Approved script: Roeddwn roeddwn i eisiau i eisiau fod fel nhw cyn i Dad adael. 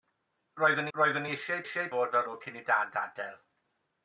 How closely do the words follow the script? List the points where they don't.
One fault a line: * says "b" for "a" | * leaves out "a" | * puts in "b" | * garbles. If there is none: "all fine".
all fine